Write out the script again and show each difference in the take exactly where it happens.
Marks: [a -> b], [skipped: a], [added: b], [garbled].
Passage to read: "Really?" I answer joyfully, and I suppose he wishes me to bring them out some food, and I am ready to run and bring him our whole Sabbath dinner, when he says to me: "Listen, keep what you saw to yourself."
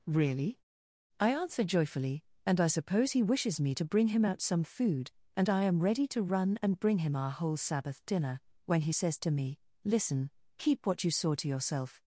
"Really?" I answer joyfully, and I suppose he wishes me to bring [them -> him] out some food, and I am ready to run and bring him our whole Sabbath dinner, when he says to me: "Listen, keep what you saw to yourself."